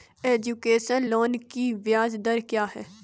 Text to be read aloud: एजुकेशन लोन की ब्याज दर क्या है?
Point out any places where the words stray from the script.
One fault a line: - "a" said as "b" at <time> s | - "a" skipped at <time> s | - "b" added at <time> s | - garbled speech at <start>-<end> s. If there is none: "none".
none